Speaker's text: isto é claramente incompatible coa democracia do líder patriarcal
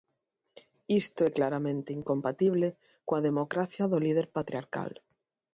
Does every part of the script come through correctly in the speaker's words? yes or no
yes